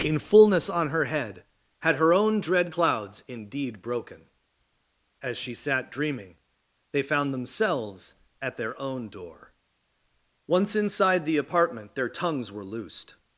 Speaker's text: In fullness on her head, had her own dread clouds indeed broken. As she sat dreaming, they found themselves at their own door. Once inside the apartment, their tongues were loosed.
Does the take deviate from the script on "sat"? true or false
false